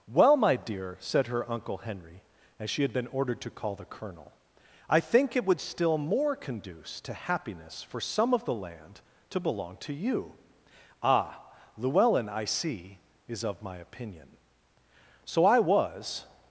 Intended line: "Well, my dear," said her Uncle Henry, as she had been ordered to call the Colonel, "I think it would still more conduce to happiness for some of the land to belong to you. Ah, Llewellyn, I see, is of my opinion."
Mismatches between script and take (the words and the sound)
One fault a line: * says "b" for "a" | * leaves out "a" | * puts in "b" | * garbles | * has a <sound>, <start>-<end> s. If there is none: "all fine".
* puts in "So I was"